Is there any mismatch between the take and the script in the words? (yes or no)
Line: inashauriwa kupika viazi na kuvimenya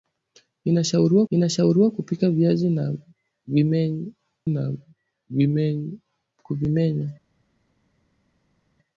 yes